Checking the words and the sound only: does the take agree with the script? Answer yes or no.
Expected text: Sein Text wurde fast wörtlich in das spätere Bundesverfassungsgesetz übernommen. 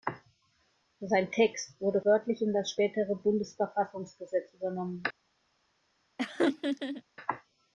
no